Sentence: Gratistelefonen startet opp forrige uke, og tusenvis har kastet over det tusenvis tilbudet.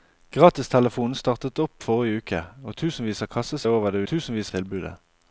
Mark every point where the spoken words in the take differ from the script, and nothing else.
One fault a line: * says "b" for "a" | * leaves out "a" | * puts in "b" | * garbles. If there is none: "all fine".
all fine